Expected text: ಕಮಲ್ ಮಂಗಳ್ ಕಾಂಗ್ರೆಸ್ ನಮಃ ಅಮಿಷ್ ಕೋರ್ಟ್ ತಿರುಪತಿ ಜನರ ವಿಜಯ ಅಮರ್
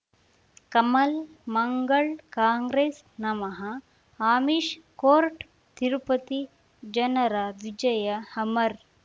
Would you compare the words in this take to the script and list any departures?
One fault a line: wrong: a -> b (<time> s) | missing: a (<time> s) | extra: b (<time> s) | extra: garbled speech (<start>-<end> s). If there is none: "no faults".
no faults